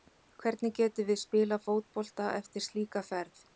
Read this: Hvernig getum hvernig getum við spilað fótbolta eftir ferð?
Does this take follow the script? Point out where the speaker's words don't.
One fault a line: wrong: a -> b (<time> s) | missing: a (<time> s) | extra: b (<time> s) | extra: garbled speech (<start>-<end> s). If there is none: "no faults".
missing: hvernig getum (1.1 s)
extra: slíka (2.7 s)